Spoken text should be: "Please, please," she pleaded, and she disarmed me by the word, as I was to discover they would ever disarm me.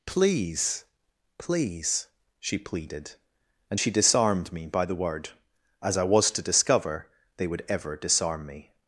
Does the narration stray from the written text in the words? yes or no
no